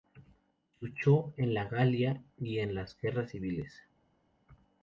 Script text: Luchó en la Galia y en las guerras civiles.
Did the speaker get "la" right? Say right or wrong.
right